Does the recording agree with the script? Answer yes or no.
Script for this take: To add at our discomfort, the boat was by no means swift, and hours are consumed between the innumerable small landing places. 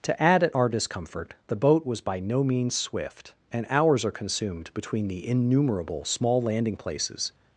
yes